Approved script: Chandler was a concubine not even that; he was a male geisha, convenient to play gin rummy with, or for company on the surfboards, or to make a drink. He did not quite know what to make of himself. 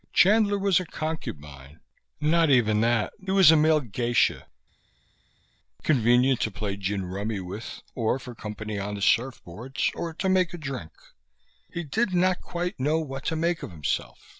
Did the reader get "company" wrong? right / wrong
right